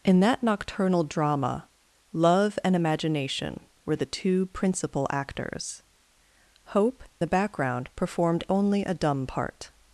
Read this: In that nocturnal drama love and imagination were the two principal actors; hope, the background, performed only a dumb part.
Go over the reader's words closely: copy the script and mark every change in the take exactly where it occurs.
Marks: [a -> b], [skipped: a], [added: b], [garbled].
In that nocturnal drama love and imagination were the two principal actors; hope, the background, performed only a dumb part.